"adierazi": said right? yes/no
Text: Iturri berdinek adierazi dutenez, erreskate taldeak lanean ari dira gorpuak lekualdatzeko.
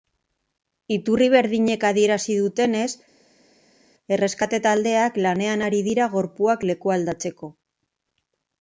yes